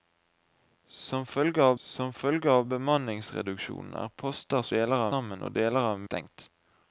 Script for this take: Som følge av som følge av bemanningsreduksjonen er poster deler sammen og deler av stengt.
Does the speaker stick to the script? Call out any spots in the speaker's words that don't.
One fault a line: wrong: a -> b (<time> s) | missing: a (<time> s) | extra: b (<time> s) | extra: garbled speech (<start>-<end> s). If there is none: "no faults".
no faults